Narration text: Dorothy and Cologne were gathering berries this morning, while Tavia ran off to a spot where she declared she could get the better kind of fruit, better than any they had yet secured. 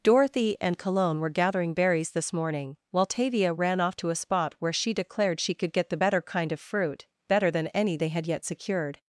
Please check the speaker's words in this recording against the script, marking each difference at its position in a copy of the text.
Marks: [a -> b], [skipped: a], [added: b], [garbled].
Dorothy and Cologne were gathering berries this morning, while Tavia ran off to a spot where she declared she could get the better kind of fruit, better than any they had yet secured.